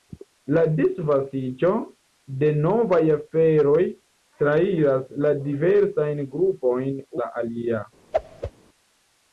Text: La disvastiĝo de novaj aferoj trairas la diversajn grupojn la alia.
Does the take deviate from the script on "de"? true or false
false